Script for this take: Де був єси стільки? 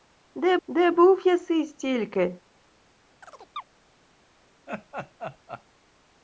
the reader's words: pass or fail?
fail